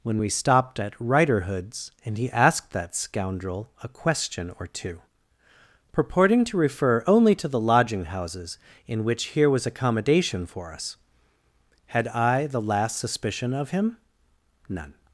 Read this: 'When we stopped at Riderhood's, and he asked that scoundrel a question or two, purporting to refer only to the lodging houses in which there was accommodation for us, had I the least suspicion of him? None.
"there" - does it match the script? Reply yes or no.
no